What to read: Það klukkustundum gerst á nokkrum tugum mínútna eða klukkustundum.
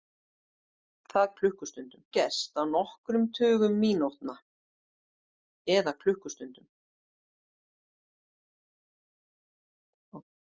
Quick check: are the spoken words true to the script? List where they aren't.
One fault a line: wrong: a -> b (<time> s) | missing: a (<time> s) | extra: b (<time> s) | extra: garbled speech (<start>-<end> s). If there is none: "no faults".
no faults